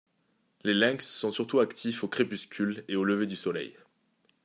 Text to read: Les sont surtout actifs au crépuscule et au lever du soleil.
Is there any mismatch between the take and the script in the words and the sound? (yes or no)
yes